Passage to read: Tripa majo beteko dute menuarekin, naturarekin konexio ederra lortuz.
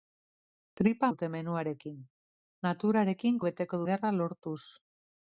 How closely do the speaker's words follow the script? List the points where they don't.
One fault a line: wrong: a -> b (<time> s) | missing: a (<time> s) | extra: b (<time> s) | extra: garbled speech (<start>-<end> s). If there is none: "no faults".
missing: majo beteko (1.1 s)
wrong: konexio -> beteko (3.5 s)